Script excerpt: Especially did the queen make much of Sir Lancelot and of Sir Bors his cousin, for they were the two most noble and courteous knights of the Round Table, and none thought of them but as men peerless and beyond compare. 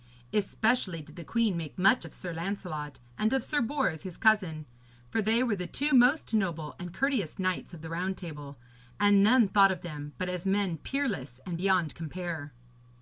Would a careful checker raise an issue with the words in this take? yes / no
no